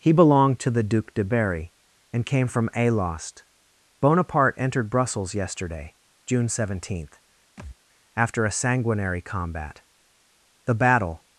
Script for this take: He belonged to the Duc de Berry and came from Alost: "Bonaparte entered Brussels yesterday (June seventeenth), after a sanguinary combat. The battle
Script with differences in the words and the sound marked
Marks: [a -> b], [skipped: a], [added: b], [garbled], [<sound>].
He belonged to the Duc de Berry and came from Alost: "Bonaparte entered Brussels yesterday (June seventeenth), [thud] after a sanguinary combat. The battle